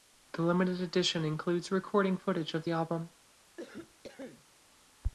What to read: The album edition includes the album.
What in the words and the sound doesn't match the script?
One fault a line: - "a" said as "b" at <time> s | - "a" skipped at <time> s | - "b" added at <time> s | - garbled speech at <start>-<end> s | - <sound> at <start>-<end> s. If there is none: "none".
- "album" said as "limited" at 0.4 s
- "recording footage of" added at 1.7 s
- cough at 3.6-4.4 s